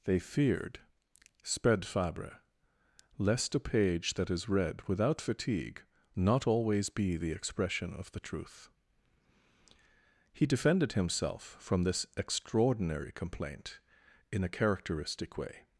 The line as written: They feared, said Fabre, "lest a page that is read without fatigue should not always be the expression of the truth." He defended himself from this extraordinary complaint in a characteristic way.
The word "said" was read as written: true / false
false